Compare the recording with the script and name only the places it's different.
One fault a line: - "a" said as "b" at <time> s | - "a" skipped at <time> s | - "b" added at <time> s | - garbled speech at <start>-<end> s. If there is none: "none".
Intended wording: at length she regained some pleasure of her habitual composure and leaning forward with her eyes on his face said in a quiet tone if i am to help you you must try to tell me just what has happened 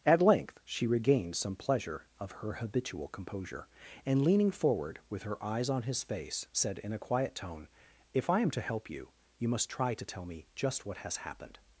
none